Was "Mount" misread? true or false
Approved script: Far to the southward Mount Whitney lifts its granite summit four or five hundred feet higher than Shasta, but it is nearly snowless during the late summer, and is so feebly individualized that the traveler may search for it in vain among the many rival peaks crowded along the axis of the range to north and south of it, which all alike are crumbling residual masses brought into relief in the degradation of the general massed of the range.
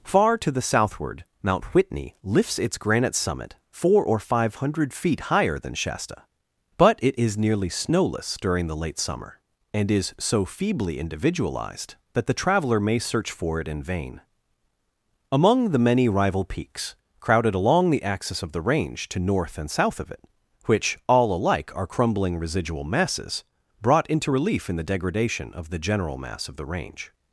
false